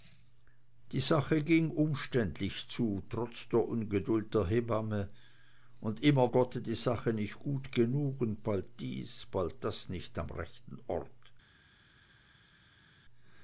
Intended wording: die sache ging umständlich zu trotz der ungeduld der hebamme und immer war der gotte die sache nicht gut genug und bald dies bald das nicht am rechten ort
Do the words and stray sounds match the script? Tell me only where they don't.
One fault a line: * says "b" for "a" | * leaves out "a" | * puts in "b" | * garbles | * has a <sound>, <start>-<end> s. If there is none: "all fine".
* leaves out "war der"